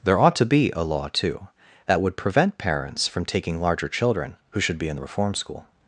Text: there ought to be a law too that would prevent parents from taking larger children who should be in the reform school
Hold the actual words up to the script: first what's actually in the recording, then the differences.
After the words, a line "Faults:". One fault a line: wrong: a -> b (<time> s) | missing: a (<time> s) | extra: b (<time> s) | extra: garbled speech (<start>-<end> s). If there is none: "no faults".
there ought to be a law too that would prevent parents from taking larger children who should be in the reform school
Faults:
no faults